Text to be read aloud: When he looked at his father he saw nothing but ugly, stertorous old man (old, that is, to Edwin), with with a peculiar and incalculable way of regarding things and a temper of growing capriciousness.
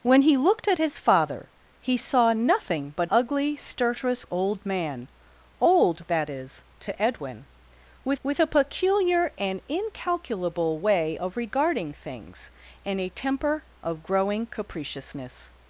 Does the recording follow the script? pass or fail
pass